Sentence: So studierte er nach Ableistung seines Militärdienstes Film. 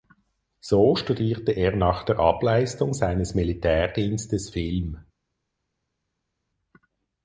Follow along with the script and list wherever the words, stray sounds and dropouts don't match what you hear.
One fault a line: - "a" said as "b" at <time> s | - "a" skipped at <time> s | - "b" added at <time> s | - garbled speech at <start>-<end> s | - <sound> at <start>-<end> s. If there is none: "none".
- "der" added at 2.0 s